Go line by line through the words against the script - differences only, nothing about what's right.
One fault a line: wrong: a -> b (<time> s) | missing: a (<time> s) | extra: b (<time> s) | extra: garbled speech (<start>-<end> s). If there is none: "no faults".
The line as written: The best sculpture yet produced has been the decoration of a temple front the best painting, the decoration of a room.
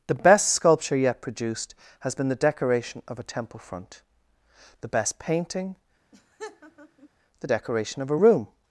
no faults